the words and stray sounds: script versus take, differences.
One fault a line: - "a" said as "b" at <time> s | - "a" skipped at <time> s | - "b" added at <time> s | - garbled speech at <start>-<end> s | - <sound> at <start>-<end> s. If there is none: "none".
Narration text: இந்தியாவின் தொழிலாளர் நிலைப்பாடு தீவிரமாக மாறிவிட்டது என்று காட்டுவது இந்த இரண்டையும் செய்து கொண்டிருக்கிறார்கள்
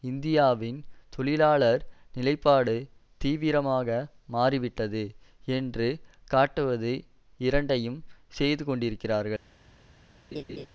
- "இந்த" skipped at 6.9 s
- laugh at 10.3-10.7 s